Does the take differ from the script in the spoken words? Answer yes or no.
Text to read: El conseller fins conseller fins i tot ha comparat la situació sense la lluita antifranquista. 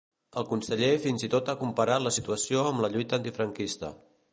yes